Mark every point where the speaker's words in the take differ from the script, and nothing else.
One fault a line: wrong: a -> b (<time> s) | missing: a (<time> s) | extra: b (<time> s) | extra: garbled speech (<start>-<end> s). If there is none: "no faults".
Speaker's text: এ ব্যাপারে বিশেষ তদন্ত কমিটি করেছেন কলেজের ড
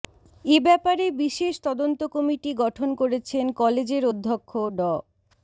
extra: গঠন (2.6 s)
extra: অধ্যক্ষ (4.1 s)